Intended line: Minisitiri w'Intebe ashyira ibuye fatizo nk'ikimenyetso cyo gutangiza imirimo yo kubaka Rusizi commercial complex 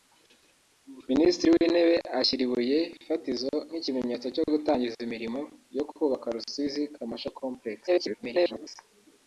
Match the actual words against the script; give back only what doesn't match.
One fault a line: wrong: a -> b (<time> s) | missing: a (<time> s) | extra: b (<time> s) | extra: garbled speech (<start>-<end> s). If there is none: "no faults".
extra: garbled speech (7.9-8.7 s)